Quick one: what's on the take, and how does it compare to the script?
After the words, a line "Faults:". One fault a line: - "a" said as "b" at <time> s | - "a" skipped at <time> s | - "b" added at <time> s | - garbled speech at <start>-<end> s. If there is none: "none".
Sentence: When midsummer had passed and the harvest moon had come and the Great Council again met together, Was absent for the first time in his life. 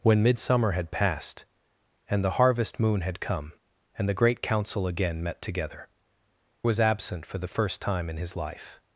When midsummer had passed and the harvest moon had come and the Great Council again met together, Was absent for the first time in his life.
Faults:
none